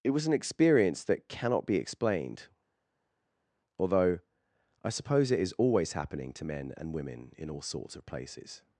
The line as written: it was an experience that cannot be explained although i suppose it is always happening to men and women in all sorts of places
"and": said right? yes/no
yes